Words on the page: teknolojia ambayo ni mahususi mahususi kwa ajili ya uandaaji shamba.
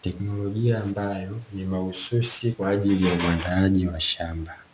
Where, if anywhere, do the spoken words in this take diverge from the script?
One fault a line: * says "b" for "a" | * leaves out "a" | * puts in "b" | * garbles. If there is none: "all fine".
* leaves out "mahususi"
* puts in "wa"